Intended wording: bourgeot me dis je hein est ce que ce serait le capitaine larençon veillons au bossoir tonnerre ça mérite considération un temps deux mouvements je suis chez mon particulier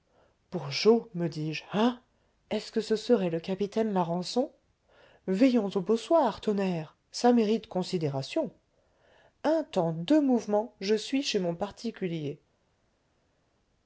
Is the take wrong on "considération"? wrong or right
right